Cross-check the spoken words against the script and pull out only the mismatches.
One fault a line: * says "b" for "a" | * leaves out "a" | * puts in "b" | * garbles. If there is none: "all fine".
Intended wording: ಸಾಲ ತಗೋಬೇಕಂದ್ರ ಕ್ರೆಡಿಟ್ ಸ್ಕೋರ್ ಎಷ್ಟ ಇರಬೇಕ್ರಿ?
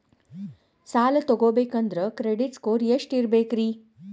all fine